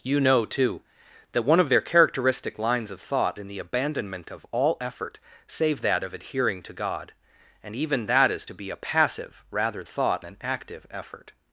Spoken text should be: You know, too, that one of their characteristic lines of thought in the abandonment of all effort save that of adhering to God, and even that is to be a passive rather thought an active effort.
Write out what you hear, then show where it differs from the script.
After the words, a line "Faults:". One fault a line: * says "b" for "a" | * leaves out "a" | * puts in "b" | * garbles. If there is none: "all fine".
You know, too, that one of their characteristic lines of thought in the abandonment of all effort save that of adhering to God, and even that is to be a passive rather thought an active effort.
Faults:
all fine